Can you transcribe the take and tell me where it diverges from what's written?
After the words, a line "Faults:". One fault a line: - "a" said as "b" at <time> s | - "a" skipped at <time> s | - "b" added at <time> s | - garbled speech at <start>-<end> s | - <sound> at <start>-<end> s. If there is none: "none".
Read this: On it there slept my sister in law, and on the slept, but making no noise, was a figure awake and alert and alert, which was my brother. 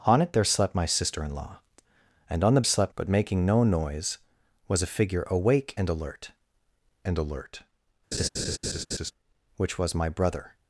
On it there slept my sister in law, and on the slept, but making no noise, was a figure awake and alert and alert, which was my brother.
Faults:
- laugh at 8.1-9.1 s